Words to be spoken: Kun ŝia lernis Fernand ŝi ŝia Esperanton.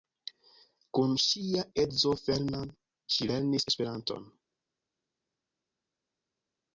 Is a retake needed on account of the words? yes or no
yes